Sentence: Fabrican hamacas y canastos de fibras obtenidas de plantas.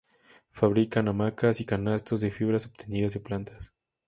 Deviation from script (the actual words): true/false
false